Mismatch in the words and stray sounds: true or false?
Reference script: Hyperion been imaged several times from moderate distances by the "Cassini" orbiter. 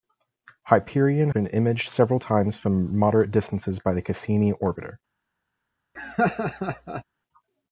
true